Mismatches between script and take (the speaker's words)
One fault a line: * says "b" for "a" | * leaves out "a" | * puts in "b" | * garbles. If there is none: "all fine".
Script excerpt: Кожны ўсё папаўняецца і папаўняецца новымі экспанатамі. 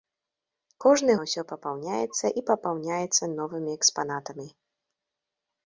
all fine